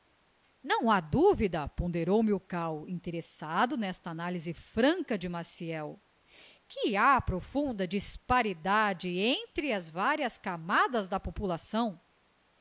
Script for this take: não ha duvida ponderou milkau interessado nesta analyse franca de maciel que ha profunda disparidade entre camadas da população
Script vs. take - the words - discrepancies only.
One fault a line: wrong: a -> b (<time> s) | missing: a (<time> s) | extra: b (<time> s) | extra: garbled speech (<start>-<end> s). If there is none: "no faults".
extra: as varias (9.7 s)